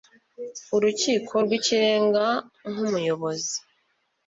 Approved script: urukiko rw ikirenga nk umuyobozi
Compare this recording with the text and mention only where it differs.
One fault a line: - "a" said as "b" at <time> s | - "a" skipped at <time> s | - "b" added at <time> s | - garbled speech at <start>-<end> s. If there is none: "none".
none